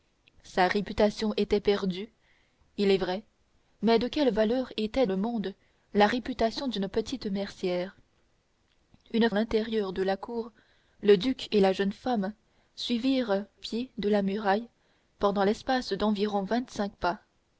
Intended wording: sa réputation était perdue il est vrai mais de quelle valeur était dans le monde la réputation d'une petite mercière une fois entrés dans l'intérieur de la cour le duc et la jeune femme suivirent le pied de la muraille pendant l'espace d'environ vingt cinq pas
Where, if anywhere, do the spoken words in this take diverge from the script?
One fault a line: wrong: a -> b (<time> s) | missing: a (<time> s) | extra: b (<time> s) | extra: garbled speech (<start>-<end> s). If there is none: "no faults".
missing: dans (5.0 s)
missing: fois entrés dans (9.3 s)
missing: le (13.4 s)